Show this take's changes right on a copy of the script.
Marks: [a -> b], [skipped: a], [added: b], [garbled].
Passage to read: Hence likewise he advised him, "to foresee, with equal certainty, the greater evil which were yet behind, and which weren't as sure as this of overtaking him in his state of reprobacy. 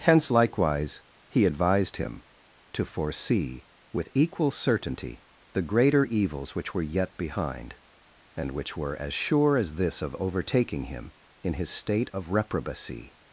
Hence likewise he advised him, "to foresee, with equal certainty, the greater [evil -> evils] which were yet behind, and which [weren't -> were] as sure as this of overtaking him in his state of reprobacy.